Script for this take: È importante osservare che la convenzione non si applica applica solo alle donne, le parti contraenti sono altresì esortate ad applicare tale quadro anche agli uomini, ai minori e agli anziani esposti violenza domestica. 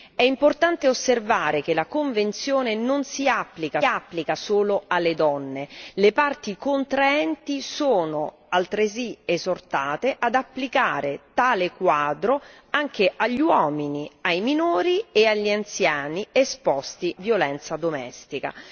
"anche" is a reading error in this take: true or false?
false